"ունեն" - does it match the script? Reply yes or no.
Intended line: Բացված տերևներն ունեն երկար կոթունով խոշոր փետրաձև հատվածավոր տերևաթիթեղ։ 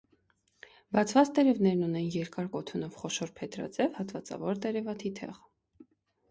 yes